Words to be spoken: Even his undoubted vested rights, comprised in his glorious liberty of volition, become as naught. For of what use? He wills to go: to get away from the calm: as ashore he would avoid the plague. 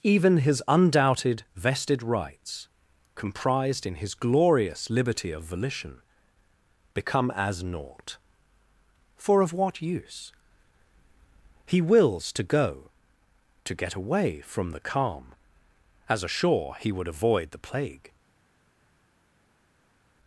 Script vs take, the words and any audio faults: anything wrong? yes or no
no